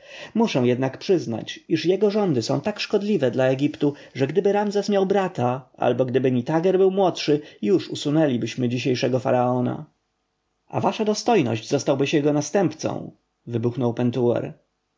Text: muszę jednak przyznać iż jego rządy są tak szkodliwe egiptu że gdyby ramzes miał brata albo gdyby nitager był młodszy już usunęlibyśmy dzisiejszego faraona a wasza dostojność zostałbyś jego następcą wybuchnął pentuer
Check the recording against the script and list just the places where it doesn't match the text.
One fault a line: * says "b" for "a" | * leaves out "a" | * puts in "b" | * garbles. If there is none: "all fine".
* puts in "dla"